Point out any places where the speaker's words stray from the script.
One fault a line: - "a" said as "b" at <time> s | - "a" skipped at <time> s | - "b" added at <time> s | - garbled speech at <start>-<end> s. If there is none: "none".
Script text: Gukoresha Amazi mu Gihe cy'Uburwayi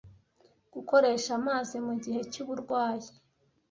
none